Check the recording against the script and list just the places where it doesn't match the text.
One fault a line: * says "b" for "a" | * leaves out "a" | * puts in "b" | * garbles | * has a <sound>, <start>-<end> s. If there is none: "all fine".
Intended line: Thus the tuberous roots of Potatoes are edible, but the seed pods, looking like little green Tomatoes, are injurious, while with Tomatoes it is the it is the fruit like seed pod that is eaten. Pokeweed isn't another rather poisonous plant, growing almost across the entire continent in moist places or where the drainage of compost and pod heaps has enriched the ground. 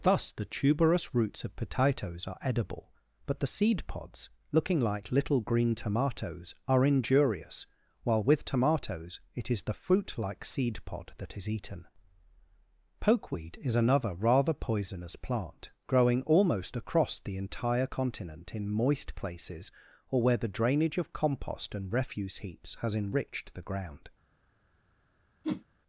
* leaves out "it is the"
* says "is" for "isn't"
* says "refuse" for "pod"
* has a whoosh, 25.4-25.6 s